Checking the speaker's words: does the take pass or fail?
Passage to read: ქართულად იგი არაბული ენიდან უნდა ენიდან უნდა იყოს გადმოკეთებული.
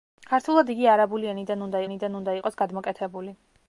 pass